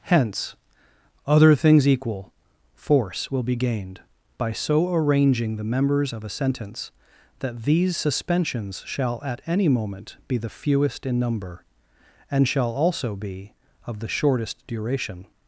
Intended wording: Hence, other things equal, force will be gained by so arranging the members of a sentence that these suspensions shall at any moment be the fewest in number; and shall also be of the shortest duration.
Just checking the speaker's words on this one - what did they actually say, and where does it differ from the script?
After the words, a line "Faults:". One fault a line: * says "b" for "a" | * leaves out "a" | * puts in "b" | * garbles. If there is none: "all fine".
Hence, other things equal, force will be gained by so arranging the members of a sentence that these suspensions shall at any moment be the fewest in number; and shall also be of the shortest duration.
Faults:
all fine